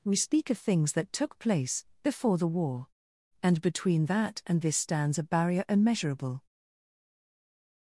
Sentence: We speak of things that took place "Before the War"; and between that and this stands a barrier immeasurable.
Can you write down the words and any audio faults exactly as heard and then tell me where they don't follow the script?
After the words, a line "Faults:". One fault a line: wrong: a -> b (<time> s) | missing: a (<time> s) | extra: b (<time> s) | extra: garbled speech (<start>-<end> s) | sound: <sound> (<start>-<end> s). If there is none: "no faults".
We speak of things that took place "Before the War"; and between that and this stands a barrier immeasurable.
Faults:
no faults